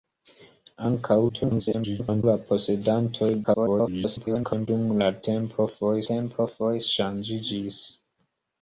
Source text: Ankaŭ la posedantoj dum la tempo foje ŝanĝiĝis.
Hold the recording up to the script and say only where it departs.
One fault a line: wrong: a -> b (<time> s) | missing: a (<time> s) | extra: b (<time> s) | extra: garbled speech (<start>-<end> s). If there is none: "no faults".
extra: garbled speech (1.3-2.2 s)
extra: garbled speech (3.4-4.7 s)
extra: tempo foje (6.1 s)